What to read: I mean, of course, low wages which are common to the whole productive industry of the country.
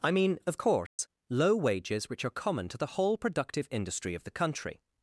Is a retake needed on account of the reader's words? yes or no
no